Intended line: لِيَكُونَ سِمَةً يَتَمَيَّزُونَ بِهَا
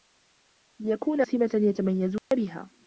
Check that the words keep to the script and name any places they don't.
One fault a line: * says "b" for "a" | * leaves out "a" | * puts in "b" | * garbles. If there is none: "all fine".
all fine